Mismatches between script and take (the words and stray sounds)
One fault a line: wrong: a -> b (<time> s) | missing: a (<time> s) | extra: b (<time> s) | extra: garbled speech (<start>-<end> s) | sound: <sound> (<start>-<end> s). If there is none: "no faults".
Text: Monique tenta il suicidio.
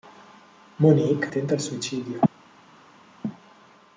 no faults